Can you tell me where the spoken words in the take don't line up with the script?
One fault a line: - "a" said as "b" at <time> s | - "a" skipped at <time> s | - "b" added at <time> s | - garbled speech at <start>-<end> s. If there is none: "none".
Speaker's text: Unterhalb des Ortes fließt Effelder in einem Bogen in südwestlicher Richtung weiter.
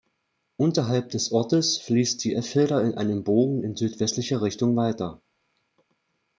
- "die" added at 2.2 s